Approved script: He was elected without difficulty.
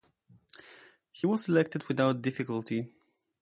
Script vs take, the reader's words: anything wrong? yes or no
no